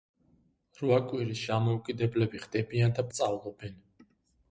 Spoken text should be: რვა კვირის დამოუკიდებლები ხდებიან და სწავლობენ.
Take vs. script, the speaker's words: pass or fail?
pass